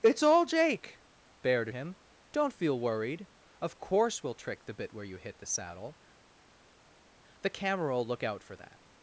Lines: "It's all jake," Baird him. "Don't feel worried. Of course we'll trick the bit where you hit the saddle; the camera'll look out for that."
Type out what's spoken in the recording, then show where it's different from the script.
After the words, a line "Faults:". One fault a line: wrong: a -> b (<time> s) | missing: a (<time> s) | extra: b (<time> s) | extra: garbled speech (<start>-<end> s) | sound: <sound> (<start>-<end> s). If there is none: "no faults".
"It's all jake," Baird him. "Don't feel worried. Of course we'll trick the bit where you hit the saddle; the camera'll look out for that."
Faults:
no faults